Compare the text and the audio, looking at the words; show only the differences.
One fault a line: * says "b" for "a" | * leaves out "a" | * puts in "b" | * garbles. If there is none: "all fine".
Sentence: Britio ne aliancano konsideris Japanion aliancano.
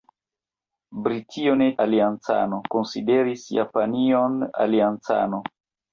all fine